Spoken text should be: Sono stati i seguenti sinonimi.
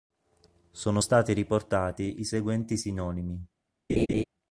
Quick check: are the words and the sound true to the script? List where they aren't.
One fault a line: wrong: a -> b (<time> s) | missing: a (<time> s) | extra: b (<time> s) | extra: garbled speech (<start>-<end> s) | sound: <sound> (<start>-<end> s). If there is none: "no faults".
extra: riportati (1.3 s)
sound: laugh (3.9-4.2 s)